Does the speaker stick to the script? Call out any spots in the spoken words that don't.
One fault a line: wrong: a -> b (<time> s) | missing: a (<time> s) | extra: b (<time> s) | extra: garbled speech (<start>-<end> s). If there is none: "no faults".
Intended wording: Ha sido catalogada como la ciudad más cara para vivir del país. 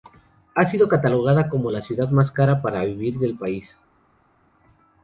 no faults